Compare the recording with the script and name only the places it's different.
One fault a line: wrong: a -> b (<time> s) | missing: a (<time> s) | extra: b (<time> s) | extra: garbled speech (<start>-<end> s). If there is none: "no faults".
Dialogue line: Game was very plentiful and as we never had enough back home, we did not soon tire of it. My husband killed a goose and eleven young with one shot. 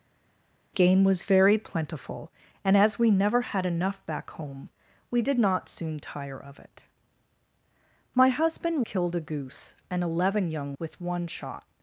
no faults